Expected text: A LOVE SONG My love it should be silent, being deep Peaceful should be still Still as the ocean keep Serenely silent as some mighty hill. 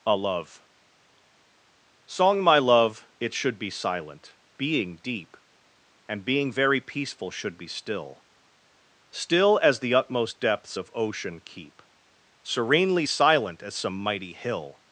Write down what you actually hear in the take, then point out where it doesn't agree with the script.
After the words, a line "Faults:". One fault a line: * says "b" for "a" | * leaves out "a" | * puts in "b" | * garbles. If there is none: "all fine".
A LOVE SONG My love it should be silent, being deep And being very peaceful should be still Still as the utmost depths of ocean keep Serenely silent as some mighty hill.
Faults:
* puts in "And being very"
* puts in "utmost depths of"